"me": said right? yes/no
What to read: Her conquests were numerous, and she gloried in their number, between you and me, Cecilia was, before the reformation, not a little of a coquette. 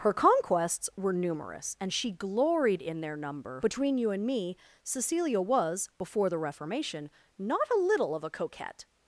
yes